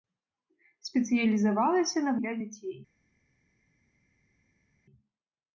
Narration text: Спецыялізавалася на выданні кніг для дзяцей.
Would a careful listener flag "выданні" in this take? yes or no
yes